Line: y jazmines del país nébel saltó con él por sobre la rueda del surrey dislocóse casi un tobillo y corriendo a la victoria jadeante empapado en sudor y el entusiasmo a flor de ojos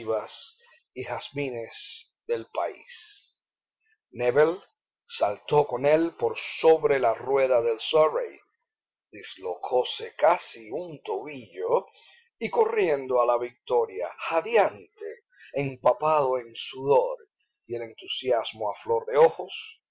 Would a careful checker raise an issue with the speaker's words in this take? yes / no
no